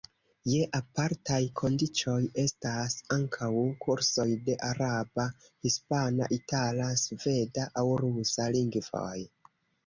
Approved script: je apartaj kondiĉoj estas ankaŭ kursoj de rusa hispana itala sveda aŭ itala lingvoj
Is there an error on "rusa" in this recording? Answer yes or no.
yes